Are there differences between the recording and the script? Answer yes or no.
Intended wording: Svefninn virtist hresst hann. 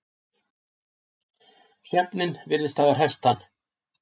yes